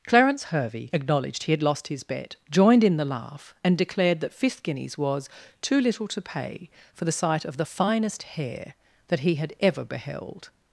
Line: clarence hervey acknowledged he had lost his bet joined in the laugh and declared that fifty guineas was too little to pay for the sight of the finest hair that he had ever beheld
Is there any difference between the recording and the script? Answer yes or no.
yes